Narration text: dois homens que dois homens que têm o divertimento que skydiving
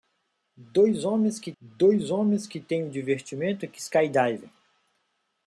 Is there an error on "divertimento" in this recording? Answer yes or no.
no